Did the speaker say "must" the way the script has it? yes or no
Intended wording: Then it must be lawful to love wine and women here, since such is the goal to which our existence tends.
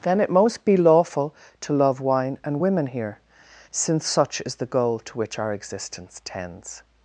no